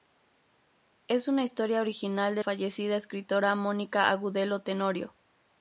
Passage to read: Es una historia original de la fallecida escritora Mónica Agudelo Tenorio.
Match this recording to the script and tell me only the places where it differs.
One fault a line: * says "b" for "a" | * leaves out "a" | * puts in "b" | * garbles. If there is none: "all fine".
* leaves out "la"